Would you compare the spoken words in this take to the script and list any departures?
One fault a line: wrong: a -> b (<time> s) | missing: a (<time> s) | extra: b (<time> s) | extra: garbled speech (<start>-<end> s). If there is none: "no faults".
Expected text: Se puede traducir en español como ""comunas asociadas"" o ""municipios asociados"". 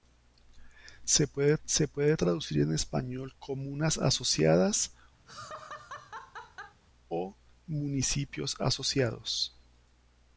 extra: se puede (1.7 s)
missing: como (3.3 s)